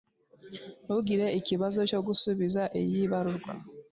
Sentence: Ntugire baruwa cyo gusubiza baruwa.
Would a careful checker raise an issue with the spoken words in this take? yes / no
yes